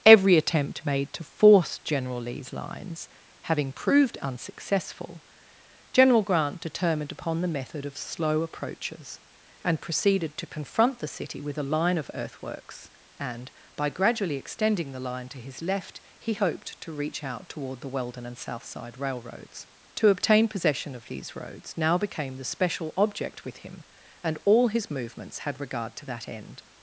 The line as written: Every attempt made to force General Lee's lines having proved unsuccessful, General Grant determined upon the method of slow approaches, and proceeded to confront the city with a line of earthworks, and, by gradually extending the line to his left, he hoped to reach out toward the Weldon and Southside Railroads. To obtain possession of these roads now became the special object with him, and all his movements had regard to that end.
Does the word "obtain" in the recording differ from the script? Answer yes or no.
no